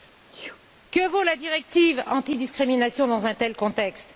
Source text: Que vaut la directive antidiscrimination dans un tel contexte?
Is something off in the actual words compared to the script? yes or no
no